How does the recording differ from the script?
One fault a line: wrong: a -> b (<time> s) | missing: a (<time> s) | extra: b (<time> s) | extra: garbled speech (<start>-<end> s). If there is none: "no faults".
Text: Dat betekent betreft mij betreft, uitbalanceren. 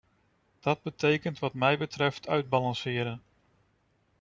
wrong: betreft -> wat (1.4 s)